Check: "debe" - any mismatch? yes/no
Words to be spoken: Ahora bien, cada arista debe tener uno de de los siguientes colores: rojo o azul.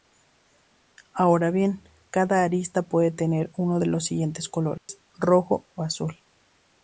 yes